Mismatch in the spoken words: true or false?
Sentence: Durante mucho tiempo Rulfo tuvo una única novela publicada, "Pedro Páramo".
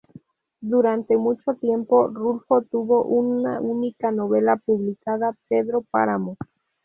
false